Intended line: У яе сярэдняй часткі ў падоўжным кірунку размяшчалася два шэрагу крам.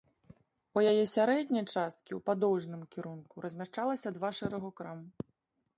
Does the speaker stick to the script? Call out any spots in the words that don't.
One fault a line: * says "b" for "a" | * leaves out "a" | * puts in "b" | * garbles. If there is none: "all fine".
all fine